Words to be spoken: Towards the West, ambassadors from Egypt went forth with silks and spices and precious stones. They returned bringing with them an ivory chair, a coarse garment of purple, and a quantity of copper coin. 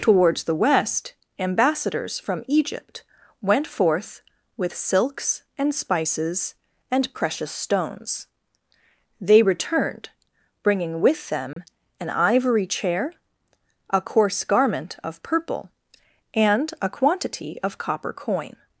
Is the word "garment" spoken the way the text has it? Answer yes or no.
yes